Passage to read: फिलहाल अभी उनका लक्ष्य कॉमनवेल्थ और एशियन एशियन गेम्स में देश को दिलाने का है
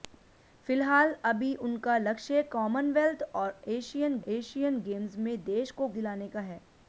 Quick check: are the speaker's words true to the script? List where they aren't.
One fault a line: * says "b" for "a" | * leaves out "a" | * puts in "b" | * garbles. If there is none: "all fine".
all fine